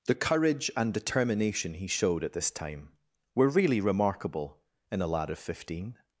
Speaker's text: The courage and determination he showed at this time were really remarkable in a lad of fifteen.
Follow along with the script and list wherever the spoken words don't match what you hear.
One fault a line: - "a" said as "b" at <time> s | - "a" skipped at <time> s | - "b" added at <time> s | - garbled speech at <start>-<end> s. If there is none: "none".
none